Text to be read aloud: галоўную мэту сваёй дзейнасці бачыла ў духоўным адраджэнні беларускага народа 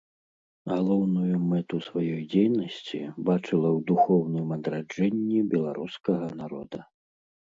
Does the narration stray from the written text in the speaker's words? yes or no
no